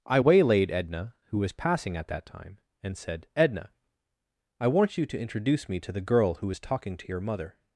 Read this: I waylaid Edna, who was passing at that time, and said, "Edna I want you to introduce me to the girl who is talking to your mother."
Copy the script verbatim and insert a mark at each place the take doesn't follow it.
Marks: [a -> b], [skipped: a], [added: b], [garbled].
I waylaid Edna, who was passing at that time, and said, "Edna I want you to introduce me to the girl who is talking to your mother."